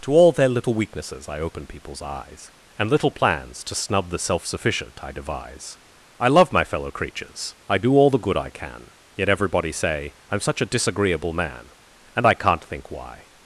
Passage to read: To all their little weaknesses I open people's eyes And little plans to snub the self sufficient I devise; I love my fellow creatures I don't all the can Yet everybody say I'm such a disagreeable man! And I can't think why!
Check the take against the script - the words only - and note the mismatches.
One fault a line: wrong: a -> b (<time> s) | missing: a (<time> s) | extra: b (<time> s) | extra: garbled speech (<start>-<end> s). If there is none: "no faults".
wrong: don't -> do (7.8 s)
extra: good I (8.2 s)